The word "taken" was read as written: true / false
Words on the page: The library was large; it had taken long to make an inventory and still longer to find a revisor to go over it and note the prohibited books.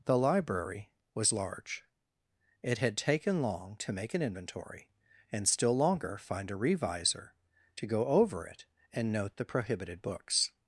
true